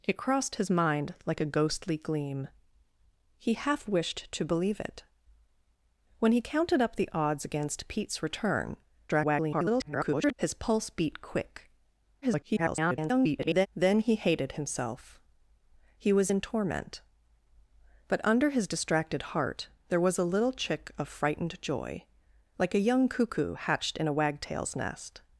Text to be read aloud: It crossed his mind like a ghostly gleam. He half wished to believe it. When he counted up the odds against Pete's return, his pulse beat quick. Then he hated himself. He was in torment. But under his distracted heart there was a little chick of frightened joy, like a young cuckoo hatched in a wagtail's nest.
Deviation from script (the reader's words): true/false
true